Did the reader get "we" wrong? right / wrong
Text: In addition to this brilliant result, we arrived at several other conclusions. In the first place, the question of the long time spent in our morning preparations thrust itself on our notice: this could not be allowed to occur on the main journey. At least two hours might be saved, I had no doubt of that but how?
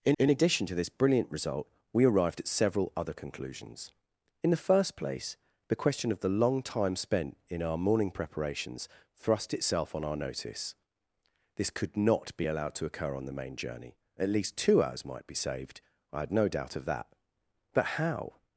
right